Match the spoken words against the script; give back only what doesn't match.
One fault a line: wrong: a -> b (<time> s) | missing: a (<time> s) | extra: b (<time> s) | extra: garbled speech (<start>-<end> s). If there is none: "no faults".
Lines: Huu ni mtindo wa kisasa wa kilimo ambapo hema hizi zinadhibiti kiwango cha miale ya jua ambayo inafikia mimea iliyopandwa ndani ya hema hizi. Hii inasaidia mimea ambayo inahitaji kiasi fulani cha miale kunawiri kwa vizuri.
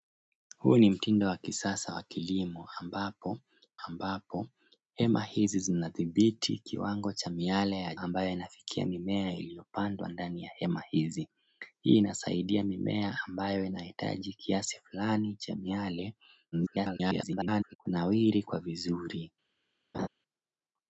extra: ambapo (3.9 s)
missing: jua (7.9 s)
extra: garbled speech (16.5-17.8 s)